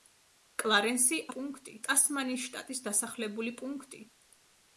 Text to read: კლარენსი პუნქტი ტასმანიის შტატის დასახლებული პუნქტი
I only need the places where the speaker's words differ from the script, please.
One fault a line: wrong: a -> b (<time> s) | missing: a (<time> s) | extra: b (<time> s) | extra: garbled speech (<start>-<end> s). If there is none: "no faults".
no faults